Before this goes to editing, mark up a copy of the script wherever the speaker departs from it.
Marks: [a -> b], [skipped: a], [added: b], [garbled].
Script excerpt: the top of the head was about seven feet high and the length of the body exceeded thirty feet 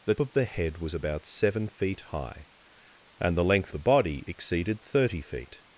the [skipped: top] of the head was about seven feet high and the length [skipped: of] the body exceeded thirty feet